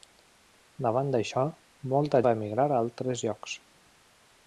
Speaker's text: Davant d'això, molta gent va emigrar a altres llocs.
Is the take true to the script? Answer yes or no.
no